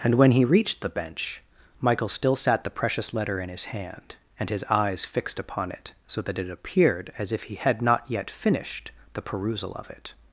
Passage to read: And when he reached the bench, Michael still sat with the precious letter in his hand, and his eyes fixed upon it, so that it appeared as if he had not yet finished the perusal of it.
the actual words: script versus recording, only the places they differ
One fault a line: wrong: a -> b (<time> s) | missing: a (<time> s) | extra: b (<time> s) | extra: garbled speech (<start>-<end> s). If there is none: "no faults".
missing: with (2.6 s)